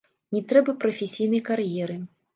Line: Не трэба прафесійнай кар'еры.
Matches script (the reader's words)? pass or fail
pass